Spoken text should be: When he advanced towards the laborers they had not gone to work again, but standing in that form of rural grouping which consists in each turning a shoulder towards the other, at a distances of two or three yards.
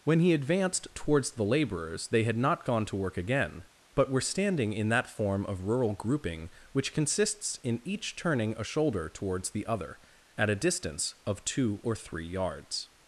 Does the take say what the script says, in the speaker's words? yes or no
no